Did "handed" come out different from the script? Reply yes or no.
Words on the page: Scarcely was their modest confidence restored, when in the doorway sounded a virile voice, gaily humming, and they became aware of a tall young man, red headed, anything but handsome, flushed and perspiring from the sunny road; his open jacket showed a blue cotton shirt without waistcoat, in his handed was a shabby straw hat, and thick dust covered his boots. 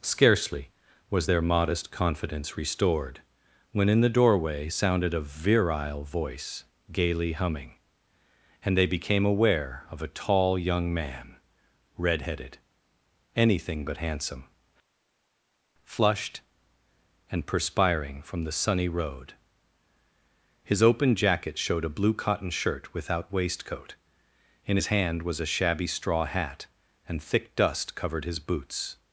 yes